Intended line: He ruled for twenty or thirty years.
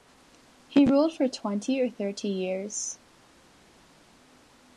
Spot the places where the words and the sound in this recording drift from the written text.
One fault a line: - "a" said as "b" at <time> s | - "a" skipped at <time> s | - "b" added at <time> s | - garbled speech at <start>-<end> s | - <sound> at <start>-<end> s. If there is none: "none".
none